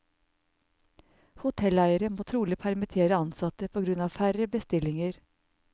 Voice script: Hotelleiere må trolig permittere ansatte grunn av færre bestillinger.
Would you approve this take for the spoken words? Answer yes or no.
no